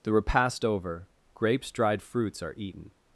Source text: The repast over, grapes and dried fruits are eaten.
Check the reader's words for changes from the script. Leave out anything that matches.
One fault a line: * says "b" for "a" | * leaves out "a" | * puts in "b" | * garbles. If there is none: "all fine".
* leaves out "and"